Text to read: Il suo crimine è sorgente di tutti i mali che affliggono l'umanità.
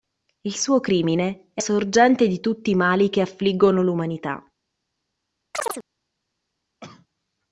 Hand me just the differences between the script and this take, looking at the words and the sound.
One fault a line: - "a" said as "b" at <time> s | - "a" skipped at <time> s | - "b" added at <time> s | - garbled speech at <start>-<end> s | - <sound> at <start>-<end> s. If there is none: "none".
- chirp at 5.5-5.8 s
- cough at 6.8-7.1 s